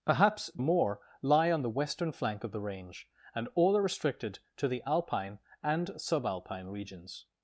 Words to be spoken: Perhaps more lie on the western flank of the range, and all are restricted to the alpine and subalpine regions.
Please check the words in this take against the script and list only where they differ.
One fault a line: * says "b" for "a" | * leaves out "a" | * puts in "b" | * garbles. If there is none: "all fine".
all fine